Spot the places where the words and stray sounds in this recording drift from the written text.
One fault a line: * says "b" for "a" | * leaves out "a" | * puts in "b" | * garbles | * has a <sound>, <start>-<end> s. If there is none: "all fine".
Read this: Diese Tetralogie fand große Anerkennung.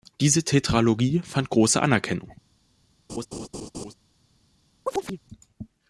* has a laugh, 3.1-3.9 s
* has a chirp, 4.9-5.2 s